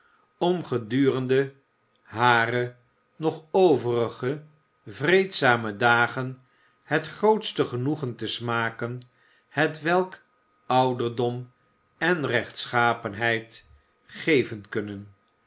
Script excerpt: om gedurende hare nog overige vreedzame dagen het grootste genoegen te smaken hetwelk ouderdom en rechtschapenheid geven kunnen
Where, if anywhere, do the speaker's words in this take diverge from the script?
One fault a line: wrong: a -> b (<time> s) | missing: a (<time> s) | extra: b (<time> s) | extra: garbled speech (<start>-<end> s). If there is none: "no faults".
no faults